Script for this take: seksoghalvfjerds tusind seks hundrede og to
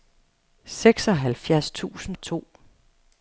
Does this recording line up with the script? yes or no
no